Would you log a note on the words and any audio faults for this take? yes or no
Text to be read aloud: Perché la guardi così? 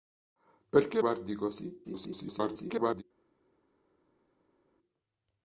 yes